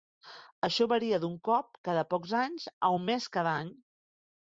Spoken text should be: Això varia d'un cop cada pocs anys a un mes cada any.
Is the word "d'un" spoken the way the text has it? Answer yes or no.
yes